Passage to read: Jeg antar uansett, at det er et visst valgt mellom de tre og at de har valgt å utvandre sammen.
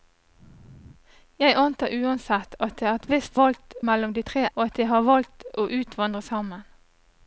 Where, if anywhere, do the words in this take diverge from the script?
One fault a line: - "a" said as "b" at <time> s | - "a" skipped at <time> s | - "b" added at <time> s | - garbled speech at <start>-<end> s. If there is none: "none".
none